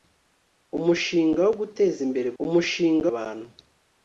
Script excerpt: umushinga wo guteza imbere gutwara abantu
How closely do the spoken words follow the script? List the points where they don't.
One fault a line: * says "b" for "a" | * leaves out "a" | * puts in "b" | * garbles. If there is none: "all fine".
* says "umushinga" for "gutwara"